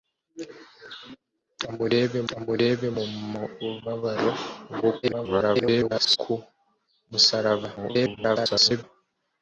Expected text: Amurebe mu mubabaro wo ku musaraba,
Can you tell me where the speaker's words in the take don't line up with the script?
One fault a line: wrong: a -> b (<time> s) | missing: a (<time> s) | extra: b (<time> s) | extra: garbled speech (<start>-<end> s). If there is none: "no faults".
extra: amurebe (2.3 s)
extra: garbled speech (5.0-6.2 s)
extra: garbled speech (7.8-8.8 s)